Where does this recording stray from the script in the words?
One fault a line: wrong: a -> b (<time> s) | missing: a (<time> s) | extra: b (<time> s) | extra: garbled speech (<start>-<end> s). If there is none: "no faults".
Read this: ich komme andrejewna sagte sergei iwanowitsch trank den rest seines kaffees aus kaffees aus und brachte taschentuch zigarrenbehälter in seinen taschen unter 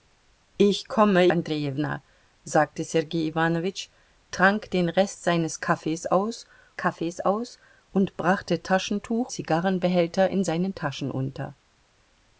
no faults